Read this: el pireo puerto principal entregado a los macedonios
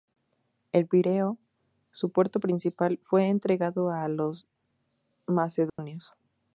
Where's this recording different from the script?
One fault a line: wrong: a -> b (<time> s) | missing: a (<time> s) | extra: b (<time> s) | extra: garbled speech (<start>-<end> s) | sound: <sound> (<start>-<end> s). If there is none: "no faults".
extra: su (1.9 s)
extra: fue (3.0 s)
sound: dropout (5.7-5.8 s)